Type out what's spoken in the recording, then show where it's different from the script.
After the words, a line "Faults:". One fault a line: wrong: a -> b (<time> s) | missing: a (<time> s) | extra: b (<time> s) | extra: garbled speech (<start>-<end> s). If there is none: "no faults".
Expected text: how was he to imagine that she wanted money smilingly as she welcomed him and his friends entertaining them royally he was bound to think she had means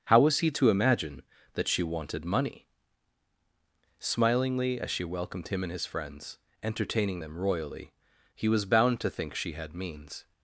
how was he to imagine that she wanted money smilingly as she welcomed him and his friends entertaining them royally he was bound to think she had means
Faults:
no faults